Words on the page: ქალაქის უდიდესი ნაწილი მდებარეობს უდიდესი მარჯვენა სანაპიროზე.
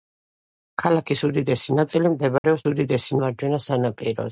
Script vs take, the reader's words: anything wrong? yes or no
no